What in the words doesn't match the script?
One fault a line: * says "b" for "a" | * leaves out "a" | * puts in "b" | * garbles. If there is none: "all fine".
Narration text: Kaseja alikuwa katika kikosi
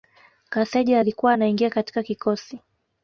* puts in "anaingia"